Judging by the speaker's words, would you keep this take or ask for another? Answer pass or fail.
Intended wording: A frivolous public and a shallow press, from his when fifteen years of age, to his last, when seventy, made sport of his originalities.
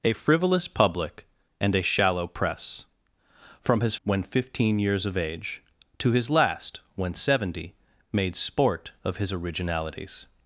pass